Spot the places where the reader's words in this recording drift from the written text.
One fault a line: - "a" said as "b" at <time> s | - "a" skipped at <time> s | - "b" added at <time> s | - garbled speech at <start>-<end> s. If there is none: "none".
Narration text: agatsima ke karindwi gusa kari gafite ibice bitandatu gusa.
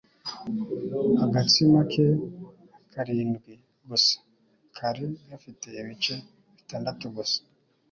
none